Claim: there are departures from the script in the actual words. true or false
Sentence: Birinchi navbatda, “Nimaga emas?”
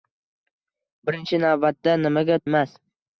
false